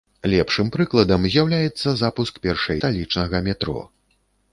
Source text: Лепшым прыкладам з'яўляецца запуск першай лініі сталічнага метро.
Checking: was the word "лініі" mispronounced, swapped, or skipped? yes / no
yes